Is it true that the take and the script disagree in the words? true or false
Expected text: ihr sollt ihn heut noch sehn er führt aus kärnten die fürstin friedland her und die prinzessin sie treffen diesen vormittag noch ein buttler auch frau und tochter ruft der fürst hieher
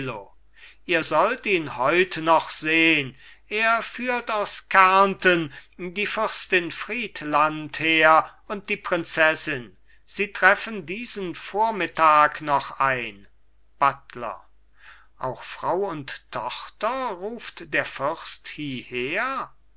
false